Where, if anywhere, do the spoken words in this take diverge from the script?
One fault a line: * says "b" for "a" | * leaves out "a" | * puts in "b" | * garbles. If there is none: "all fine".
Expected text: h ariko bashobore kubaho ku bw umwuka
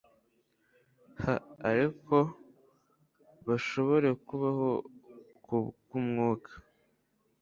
all fine